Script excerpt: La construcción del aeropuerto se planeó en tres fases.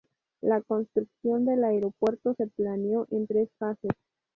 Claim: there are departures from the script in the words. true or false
false